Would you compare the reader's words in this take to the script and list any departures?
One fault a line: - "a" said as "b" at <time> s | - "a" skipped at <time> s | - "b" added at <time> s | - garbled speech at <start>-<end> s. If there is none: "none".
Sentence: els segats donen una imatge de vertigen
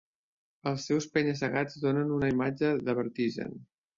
- "seus penya" added at 0.9 s